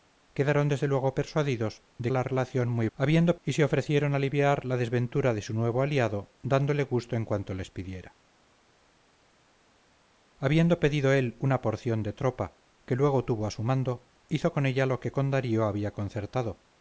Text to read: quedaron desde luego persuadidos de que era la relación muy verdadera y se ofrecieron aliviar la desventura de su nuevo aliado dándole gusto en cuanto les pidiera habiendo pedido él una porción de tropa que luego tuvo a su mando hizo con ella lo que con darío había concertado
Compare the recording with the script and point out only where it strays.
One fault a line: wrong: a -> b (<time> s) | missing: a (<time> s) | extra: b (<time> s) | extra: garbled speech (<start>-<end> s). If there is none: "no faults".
missing: que era (2.1 s)
wrong: verdadera -> habiendo (3.0 s)